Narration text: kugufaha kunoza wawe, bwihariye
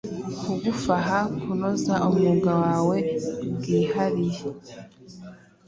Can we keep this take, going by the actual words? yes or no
no